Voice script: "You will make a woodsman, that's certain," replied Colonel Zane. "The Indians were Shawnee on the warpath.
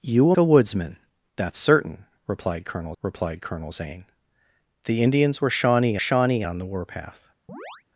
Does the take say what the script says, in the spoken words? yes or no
no